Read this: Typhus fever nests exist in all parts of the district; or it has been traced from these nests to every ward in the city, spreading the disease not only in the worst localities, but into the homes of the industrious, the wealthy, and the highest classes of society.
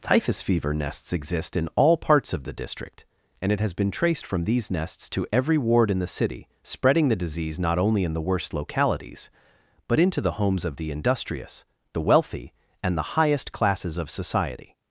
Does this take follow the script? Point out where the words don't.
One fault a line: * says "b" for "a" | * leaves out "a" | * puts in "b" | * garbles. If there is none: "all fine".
* says "and" for "or"